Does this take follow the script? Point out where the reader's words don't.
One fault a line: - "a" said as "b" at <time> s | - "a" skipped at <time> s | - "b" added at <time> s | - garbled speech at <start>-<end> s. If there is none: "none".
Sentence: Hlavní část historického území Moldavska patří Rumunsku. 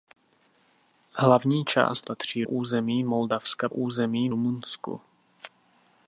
- "historického" said as "patří" at 2.0 s
- "patří" said as "území" at 3.7 s